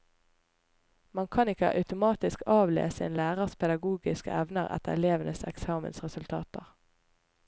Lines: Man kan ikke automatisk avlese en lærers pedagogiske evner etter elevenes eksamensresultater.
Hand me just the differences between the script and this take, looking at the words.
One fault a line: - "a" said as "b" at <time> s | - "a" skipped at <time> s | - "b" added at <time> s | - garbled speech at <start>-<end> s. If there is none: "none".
none